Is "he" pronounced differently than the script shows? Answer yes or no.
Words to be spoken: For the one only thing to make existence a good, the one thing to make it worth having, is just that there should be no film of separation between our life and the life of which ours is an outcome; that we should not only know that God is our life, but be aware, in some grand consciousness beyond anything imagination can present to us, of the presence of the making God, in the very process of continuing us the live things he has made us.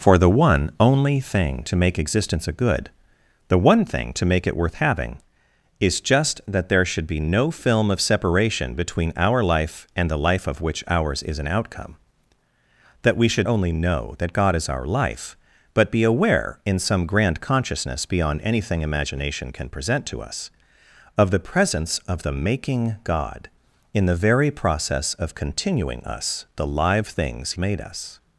yes